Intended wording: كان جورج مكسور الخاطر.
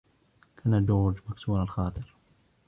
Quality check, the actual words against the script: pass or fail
pass